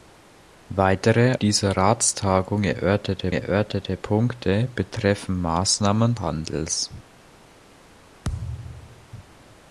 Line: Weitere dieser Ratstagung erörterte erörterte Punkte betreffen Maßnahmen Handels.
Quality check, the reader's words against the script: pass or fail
pass